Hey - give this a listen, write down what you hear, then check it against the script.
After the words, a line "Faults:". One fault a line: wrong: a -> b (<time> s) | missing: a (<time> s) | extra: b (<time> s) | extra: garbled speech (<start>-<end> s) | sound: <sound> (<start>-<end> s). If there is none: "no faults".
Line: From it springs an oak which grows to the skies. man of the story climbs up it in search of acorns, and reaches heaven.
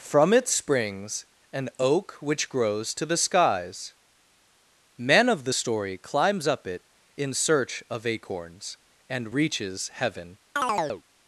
From it springs an oak which grows to the skies. man of the story climbs up it in search of acorns, and reaches heaven.
Faults:
sound: chirp (10.6-11.0 s)